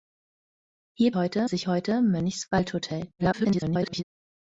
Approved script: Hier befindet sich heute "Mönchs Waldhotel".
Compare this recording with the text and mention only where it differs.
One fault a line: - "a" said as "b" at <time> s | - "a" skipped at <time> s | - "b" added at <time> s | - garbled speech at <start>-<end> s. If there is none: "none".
- "befindet" said as "heute" at 1.1 s
- garbled speech at 3.2-4.0 s